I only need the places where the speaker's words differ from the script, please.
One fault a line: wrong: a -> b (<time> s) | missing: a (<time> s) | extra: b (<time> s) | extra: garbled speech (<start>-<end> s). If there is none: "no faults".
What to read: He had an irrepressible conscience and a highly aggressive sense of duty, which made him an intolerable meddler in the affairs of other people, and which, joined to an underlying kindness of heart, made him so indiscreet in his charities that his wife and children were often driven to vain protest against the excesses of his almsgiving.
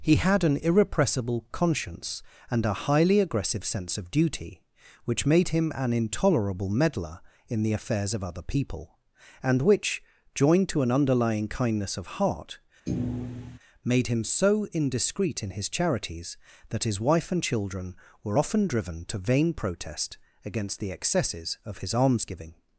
no faults